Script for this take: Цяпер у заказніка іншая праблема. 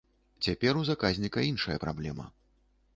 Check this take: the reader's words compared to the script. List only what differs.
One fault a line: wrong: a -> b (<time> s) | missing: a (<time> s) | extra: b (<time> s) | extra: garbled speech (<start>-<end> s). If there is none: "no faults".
no faults